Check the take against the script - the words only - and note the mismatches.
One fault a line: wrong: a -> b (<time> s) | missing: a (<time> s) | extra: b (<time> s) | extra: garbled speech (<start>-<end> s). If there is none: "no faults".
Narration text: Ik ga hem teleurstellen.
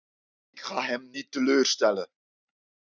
extra: niet (1.1 s)